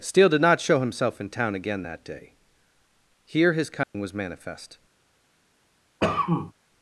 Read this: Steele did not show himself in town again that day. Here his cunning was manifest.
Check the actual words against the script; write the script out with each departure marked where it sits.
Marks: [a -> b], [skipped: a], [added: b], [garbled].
Steele did not show himself in town again that day. Here his cunning was manifest.